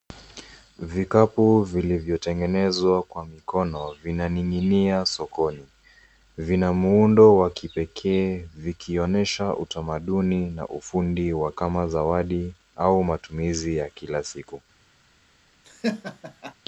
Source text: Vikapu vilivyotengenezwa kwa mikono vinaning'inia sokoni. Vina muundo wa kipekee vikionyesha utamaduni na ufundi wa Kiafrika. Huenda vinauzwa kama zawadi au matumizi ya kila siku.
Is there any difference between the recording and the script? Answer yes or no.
yes